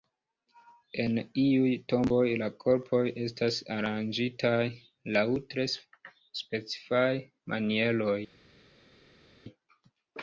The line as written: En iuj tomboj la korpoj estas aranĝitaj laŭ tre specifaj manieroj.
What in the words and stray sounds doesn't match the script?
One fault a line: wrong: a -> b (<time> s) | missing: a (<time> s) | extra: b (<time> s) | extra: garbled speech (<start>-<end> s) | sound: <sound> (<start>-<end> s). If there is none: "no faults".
no faults